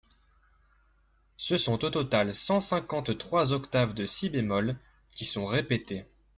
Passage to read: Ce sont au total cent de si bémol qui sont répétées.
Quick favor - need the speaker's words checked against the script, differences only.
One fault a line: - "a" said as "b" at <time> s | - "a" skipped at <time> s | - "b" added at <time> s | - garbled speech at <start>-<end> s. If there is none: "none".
- "cinquante trois octaves" added at 2.6 s